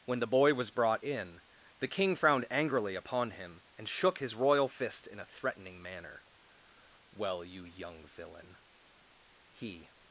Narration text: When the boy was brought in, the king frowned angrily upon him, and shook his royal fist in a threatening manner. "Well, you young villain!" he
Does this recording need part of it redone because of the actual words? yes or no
no